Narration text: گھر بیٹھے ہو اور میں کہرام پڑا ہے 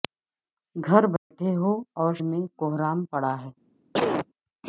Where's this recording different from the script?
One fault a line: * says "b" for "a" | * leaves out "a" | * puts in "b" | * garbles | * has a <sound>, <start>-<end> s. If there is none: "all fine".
* has a dropout, 1.2-1.3 s
* has a cough, 3.9-4.3 s